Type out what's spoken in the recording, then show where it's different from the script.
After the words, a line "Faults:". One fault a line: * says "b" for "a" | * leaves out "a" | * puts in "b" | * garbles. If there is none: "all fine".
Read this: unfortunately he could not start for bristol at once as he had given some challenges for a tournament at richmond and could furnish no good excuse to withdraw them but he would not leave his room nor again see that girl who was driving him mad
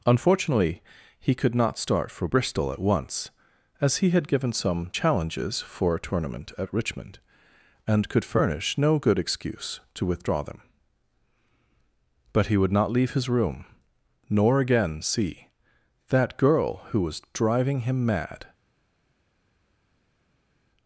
unfortunately he could not start for bristol at once as he had given some challenges for a tournament at richmond and could furnish no good excuse to withdraw them but he would not leave his room nor again see that girl who was driving him mad
Faults:
all fine